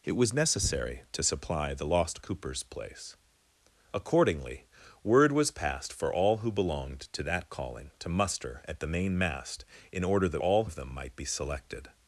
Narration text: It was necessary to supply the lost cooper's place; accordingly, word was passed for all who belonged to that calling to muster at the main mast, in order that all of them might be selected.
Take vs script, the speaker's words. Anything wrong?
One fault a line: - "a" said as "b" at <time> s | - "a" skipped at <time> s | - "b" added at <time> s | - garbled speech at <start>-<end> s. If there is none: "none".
none